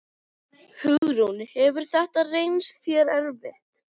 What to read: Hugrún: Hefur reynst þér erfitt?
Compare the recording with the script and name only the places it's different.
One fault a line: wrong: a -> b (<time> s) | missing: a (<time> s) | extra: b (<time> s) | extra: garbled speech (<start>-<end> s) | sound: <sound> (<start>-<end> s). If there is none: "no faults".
sound: dropout (1.0-1.0 s)
extra: þetta (1.9 s)